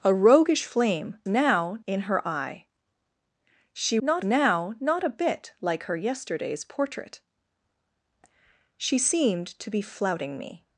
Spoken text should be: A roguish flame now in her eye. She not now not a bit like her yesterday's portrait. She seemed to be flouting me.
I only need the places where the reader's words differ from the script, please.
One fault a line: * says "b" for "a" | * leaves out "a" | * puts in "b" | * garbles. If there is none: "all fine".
all fine